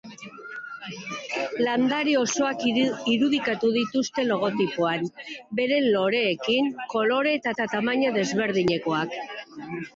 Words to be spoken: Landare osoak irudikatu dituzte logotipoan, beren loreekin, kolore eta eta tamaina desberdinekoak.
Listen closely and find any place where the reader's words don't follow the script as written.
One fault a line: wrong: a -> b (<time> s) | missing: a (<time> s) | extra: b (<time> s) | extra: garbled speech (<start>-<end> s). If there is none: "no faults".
no faults